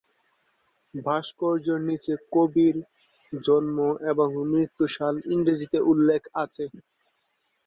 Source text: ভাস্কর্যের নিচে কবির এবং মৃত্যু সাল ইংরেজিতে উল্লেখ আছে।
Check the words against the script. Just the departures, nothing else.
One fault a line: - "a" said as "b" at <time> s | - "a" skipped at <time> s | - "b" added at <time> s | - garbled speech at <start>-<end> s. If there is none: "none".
- "জন্ম" added at 3.3 s